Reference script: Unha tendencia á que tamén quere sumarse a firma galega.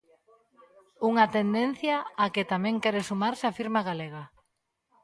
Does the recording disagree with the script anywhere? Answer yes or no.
no